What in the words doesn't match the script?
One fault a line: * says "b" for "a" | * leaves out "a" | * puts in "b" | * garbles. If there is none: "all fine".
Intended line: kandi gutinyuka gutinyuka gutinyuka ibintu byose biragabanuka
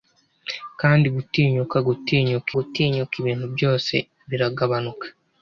all fine